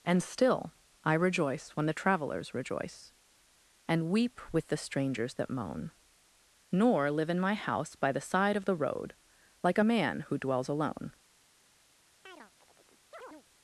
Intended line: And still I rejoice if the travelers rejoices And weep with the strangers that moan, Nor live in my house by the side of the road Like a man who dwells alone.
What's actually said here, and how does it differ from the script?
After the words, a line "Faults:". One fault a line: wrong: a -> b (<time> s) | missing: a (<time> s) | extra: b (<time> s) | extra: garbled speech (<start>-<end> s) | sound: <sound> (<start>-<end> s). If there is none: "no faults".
And still I rejoice when the travelers rejoice And weep with the strangers that moan, Nor live in my house by the side of the road Like a man who dwells alone.
Faults:
wrong: if -> when (1.7 s)
wrong: rejoices -> rejoice (2.5 s)
sound: chirp (12.2-13.4 s)